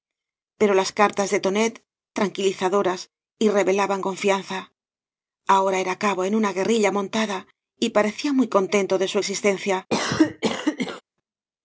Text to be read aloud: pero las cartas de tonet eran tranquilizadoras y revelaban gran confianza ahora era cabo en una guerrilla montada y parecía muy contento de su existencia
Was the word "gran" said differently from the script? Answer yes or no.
yes